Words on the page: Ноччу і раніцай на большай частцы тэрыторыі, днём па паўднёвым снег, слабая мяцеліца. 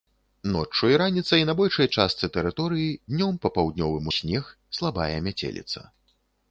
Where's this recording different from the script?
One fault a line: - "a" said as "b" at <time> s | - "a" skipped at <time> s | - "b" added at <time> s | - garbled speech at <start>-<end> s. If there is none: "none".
none